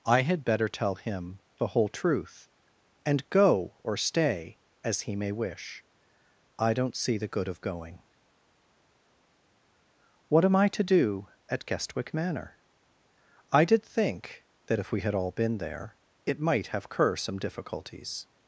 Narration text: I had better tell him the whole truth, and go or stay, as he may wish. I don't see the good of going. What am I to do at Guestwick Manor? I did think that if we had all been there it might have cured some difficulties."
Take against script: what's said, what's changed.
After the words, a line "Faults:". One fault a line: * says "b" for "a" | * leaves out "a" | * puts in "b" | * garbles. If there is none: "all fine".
I had better tell him the whole truth, and go or stay, as he may wish. I don't see the good of going. What am I to do at Guestwick Manor? I did think that if we had all been there it might have cur some difficulties."
Faults:
* says "cur" for "cured"